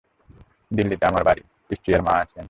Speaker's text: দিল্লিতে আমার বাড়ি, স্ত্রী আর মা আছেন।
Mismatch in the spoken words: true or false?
false